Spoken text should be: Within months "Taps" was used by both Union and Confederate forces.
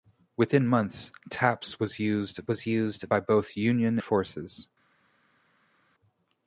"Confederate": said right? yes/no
no